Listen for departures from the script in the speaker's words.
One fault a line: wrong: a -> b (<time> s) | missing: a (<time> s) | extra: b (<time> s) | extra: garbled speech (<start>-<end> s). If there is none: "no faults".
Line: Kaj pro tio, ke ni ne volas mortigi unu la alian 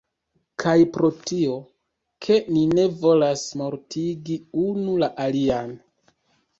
no faults